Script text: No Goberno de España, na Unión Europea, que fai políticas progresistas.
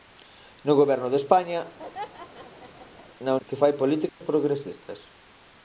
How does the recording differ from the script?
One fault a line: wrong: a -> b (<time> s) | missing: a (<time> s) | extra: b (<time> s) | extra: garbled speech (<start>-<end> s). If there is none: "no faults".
missing: Unión Europea (3.3 s)